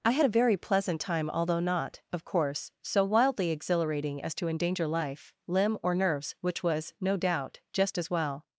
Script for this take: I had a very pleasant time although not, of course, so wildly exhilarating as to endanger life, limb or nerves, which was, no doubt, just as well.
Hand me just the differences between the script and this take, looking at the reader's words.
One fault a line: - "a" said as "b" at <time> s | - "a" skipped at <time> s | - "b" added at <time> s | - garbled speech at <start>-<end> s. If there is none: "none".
none